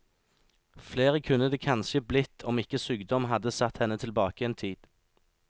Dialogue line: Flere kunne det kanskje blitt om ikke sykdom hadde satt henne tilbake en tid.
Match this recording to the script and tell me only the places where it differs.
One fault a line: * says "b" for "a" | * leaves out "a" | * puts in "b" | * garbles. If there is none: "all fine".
all fine